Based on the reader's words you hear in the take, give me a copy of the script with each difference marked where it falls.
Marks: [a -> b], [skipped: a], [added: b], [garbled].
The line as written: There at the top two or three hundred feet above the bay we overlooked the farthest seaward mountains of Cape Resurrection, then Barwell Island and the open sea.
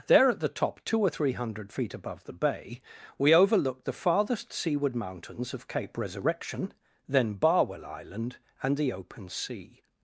There at the top two or three hundred feet above the bay we overlooked the farthest seaward mountains of Cape Resurrection, then Barwell Island and the open sea.